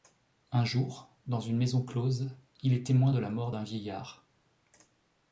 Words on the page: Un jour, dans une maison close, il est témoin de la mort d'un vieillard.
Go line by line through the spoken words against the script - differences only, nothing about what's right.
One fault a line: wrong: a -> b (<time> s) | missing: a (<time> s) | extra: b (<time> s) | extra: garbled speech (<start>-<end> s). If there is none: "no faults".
no faults